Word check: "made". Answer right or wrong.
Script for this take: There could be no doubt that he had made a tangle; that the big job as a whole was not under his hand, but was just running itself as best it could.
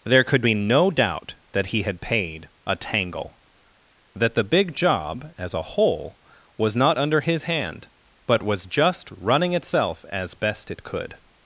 wrong